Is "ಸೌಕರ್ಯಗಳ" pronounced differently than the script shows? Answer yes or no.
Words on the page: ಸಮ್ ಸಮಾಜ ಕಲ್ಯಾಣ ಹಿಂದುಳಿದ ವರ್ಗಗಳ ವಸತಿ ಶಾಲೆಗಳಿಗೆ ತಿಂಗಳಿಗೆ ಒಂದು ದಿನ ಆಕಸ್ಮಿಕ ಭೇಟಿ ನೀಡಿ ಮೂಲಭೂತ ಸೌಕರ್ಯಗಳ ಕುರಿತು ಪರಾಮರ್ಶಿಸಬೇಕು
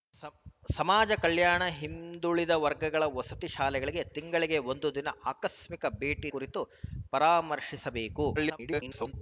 yes